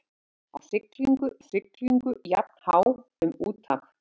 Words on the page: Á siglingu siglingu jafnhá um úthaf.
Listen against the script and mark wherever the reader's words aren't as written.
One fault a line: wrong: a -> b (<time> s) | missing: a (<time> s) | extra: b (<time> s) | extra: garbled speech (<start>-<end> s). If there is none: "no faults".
no faults